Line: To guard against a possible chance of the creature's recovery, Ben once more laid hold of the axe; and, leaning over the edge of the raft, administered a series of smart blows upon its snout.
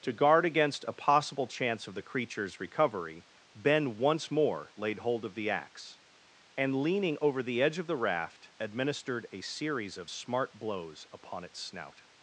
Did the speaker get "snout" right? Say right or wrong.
right